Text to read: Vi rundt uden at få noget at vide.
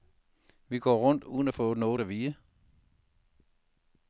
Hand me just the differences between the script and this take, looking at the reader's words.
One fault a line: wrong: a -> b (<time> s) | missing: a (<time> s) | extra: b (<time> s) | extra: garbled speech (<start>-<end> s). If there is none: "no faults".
extra: går (0.8 s)